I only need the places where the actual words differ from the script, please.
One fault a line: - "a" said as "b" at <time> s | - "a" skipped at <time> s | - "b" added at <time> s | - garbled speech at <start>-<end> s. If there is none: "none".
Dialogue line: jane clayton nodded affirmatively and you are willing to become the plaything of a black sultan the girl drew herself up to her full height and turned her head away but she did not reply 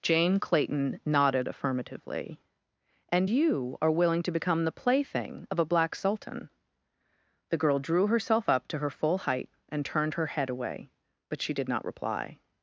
none